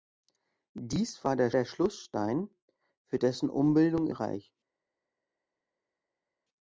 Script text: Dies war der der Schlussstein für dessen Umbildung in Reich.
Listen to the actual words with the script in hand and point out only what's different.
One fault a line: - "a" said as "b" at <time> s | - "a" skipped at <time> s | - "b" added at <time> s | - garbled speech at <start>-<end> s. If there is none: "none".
none